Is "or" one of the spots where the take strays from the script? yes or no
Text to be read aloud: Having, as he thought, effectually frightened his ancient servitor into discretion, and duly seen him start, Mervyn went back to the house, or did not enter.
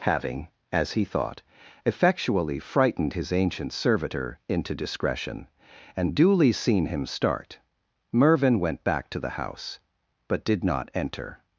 yes